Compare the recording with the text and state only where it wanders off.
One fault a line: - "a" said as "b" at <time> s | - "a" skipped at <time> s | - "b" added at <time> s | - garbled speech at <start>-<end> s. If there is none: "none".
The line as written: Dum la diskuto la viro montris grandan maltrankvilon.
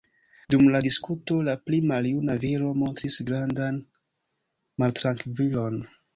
- "pli maljuna" added at 1.7 s